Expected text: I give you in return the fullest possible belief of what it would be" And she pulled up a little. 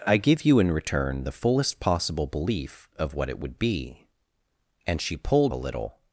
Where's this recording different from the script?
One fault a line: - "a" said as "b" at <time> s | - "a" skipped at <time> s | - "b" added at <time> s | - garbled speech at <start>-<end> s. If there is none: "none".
- "up" skipped at 5.5 s